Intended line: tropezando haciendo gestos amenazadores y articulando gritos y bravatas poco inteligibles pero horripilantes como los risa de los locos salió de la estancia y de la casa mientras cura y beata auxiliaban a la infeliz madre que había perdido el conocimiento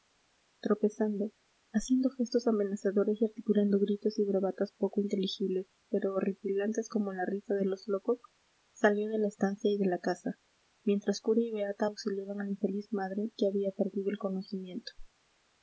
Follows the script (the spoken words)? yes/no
no